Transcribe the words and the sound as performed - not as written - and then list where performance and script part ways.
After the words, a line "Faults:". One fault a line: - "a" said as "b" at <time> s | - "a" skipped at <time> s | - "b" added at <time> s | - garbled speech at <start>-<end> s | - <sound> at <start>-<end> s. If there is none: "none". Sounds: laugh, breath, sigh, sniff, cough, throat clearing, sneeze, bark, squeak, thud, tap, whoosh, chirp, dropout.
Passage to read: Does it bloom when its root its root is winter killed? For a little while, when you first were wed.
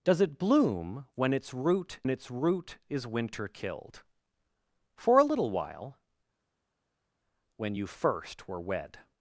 Does it bloom when its root its root is winter killed? For a little while, when you first were wed.
Faults:
none